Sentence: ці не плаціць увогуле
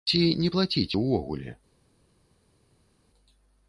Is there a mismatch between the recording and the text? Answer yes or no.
no